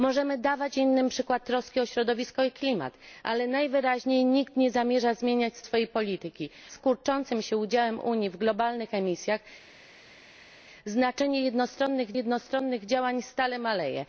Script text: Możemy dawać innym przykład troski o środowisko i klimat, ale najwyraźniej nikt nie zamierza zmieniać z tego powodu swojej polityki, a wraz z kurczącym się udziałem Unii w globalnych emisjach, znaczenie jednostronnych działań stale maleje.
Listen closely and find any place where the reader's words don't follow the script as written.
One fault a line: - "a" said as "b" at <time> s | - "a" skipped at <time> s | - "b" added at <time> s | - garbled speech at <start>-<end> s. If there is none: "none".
- "tego powodu" skipped at 5.6 s
- "a wraz" skipped at 6.5 s
- "jednostronnych" added at 12.1 s